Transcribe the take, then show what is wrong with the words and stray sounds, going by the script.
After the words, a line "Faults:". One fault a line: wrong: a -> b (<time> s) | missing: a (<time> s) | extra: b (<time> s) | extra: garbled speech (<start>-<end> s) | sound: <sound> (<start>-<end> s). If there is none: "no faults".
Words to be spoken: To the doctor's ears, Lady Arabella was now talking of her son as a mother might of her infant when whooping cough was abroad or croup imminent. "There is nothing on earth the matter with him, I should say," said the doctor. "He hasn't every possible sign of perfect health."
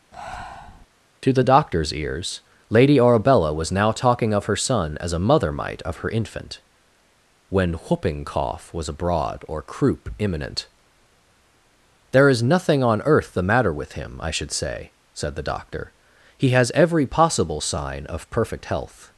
To the doctor's ears, Lady Arabella was now talking of her son as a mother might of her infant when whooping cough was abroad or croup imminent. "There is nothing on earth the matter with him, I should say," said the doctor. "He has every possible sign of perfect health."
Faults:
sound: breath (0.1-0.9 s)
wrong: hasn't -> has (16.5 s)